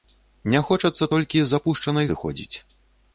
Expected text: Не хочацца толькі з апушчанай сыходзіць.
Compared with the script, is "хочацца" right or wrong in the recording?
right